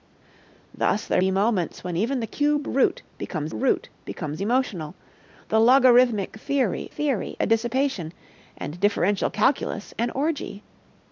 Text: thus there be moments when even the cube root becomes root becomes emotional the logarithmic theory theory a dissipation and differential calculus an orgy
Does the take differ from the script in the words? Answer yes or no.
no